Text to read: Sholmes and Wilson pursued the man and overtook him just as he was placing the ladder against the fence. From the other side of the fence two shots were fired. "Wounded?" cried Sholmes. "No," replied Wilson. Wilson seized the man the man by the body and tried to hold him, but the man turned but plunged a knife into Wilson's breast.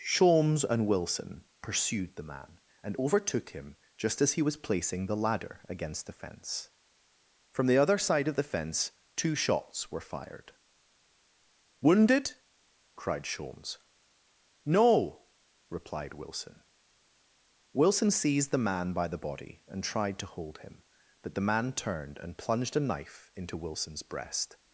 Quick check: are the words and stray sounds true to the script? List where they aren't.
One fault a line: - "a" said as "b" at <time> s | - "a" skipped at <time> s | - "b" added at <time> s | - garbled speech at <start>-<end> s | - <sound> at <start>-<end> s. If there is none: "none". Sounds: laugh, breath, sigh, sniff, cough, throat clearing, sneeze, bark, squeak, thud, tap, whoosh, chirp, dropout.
- "the man" skipped at 18.9 s
- "but" said as "and" at 22.2 s